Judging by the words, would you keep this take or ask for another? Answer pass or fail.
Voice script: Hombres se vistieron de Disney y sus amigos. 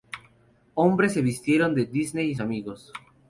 fail